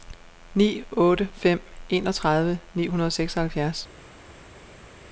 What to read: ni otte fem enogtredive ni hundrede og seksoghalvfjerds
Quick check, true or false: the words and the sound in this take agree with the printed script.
true